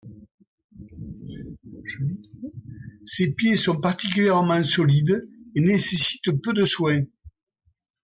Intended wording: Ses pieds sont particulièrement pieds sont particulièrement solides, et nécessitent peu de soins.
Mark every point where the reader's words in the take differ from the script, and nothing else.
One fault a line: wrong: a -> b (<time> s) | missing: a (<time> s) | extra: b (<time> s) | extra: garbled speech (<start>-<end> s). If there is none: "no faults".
missing: pieds sont particulièrement (4.6 s)